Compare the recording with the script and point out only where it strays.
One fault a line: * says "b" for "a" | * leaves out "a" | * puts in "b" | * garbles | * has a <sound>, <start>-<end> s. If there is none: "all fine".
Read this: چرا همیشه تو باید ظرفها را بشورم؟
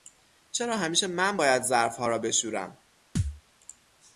* says "من" for "تو"
* has a thud, 3.2-3.4 s